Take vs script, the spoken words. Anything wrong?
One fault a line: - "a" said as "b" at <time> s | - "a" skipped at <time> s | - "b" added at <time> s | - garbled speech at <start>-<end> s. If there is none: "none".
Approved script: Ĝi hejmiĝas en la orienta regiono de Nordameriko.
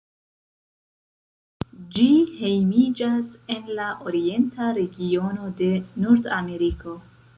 none